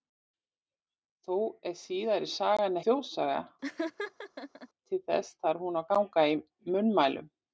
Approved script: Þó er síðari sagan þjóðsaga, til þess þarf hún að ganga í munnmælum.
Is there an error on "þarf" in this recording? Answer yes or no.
no